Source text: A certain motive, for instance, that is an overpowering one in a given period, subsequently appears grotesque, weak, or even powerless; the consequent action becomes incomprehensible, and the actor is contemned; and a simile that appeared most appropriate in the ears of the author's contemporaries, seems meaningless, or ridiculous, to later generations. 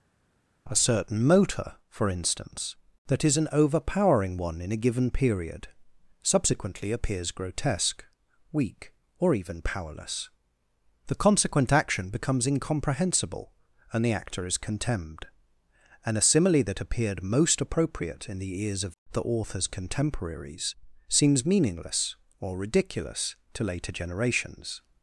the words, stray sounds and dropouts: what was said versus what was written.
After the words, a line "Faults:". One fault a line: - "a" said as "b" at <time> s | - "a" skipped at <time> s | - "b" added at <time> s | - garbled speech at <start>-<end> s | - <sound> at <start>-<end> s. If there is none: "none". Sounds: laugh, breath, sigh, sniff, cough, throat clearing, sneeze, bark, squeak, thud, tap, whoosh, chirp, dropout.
A certain motor, for instance, that is an overpowering one in a given period, subsequently appears grotesque, weak, or even powerless; the consequent action becomes incomprehensible, and the actor is contemned; and a simile that appeared most appropriate in the ears of the author's contemporaries, seems meaningless, or ridiculous, to later generations.
Faults:
- "motive" said as "motor" at 1.2 s